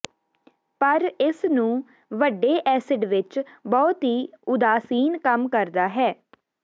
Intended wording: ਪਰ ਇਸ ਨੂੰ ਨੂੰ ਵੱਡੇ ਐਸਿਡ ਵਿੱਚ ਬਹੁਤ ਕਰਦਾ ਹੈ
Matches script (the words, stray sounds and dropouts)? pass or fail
fail